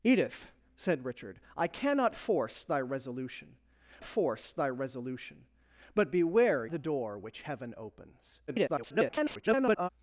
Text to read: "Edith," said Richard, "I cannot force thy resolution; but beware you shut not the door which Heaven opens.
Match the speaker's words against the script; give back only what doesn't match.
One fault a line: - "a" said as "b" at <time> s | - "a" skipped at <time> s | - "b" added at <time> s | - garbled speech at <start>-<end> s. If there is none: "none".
- "but beware you shut not" said as "force thy resolution but beware" at 4.0 s
- garbled speech at 8.5-9.9 s